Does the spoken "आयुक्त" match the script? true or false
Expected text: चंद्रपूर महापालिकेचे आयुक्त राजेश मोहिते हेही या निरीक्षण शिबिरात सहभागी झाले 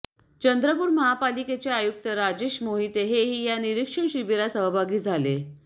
true